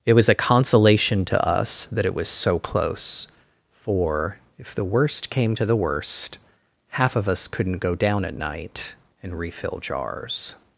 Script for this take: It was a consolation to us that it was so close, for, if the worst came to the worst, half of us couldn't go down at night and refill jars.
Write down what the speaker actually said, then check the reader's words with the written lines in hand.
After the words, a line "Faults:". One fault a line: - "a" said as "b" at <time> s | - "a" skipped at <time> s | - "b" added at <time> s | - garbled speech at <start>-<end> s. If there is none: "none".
It was a consolation to us that it was so close, for, if the worst came to the worst, half of us couldn't go down at night and refill jars.
Faults:
none